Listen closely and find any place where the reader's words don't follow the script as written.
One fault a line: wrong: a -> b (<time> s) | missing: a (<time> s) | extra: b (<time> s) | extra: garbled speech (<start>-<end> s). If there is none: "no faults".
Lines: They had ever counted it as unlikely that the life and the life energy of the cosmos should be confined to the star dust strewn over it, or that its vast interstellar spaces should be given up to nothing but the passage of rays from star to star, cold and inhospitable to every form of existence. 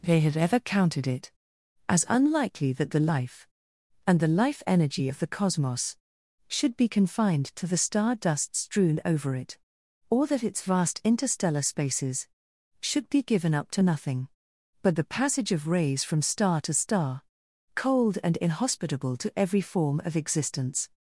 no faults